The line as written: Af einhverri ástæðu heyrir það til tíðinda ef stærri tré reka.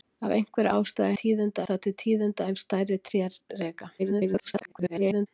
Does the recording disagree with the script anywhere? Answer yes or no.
yes